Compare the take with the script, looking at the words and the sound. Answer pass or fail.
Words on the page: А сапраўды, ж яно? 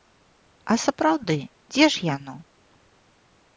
fail